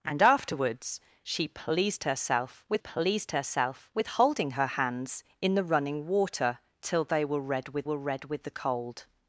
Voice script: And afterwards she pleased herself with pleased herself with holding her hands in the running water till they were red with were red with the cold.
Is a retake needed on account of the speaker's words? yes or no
no